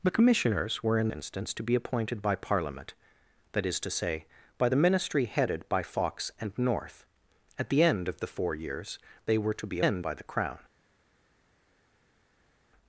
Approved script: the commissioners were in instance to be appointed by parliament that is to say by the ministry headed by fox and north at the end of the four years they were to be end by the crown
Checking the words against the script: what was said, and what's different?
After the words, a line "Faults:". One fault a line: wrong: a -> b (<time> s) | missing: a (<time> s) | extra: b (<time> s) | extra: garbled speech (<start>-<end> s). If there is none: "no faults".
the commissioners were in instance to be appointed by parliament that is to say by the ministry headed by fox and north at the end of the four years they were to be end by the crown
Faults:
no faults